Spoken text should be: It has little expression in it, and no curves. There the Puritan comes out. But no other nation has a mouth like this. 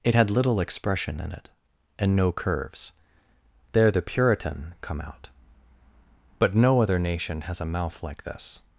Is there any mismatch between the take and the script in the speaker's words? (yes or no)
yes